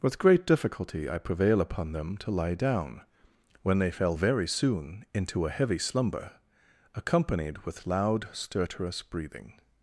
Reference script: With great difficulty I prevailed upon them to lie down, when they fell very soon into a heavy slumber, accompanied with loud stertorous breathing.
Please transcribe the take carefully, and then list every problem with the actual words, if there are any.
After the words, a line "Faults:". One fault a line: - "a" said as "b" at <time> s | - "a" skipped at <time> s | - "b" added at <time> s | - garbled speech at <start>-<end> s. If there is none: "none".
With great difficulty I prevail upon them to lie down, when they fell very soon into a heavy slumber, accompanied with loud stertorous breathing.
Faults:
- "prevailed" said as "prevail" at 1.2 s